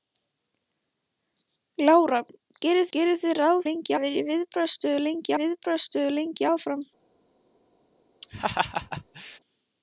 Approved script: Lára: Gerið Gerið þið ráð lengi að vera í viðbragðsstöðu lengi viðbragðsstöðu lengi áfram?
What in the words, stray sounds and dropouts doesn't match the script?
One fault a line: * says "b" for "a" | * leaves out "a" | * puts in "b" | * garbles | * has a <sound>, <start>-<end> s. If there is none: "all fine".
* has a laugh, 8.2-9.4 s